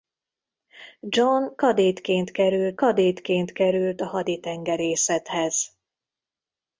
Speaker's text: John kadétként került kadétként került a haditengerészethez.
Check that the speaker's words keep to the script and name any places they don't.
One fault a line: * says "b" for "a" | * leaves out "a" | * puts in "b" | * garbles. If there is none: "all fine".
all fine